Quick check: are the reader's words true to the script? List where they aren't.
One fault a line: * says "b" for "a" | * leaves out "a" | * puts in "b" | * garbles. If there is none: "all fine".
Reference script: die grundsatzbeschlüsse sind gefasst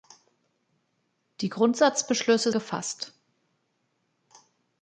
* leaves out "sind"